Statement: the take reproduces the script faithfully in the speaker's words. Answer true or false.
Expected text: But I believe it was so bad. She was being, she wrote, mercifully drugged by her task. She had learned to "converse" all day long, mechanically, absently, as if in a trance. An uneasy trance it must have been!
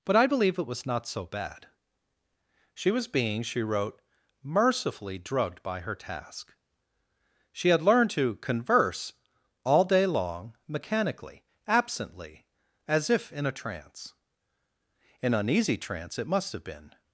false